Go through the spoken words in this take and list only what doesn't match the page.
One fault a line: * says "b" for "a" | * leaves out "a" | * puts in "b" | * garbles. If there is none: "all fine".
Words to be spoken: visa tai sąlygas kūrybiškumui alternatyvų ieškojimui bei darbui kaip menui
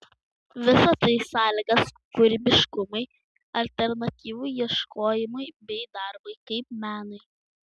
all fine